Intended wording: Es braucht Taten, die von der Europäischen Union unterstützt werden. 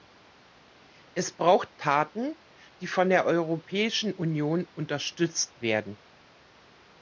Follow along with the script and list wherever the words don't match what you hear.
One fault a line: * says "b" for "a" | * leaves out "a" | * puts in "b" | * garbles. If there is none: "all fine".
all fine